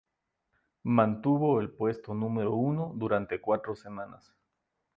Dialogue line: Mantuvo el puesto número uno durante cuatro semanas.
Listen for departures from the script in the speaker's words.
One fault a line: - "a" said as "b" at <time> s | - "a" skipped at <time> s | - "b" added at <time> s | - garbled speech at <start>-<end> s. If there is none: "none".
none